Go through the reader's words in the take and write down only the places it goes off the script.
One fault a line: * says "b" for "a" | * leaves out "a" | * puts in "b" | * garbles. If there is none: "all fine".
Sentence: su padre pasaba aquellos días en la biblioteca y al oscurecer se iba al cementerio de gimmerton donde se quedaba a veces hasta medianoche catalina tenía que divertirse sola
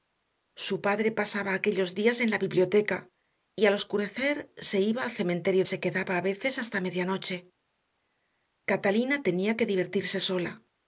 * leaves out "de gimmerton donde"